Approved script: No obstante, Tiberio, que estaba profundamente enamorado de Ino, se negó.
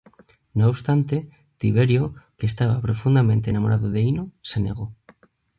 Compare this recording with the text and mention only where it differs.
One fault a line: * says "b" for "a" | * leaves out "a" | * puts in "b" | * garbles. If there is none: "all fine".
all fine